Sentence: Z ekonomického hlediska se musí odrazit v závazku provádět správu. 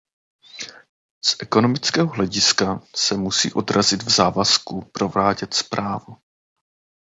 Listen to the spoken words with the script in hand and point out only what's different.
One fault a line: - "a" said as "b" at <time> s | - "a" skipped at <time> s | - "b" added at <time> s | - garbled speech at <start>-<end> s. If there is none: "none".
none